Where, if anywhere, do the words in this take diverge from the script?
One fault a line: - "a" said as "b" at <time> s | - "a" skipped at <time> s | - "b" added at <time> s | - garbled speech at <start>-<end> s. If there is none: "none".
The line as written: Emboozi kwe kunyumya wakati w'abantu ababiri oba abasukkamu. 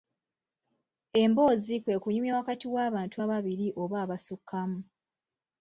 none